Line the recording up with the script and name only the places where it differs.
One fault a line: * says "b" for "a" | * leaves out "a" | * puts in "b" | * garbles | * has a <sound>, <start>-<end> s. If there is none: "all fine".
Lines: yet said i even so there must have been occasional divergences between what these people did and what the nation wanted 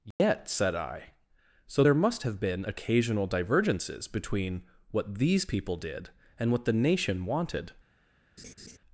* has a dropout, 0.1-0.2 s
* leaves out "even"
* has a laugh, 8.4-8.8 s